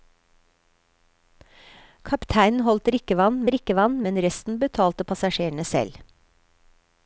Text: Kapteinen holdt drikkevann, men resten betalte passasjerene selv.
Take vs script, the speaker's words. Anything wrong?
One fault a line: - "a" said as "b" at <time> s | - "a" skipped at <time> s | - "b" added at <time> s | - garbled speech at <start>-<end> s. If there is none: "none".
- "drikkevann" added at 3.5 s